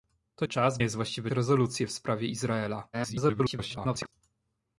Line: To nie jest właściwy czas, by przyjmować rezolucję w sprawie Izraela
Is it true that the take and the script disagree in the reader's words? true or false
true